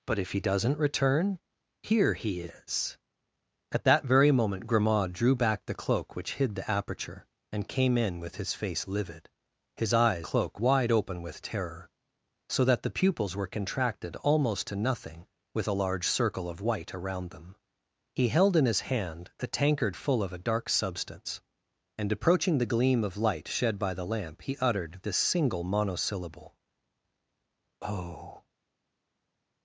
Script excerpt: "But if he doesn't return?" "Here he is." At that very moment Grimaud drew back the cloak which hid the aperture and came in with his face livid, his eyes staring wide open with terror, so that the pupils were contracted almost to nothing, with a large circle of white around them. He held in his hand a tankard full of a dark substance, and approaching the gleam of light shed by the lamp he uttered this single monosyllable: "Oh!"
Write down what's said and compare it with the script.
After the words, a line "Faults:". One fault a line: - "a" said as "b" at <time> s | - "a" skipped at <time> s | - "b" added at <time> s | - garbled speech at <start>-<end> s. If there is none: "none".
"But if he doesn't return?" "Here he is." At that very moment Grimaud drew back the cloak which hid the aperture and came in with his face livid, his eyes cloak wide open with terror, so that the pupils were contracted almost to nothing, with a large circle of white around them. He held in his hand a tankard full of a dark substance, and approaching the gleam of light shed by the lamp he uttered this single monosyllable: "Oh!"
Faults:
- "staring" said as "cloak" at 10.2 s